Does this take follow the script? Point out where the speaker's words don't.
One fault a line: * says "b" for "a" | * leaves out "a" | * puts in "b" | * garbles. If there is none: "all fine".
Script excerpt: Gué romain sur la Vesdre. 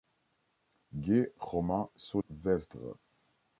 * leaves out "la"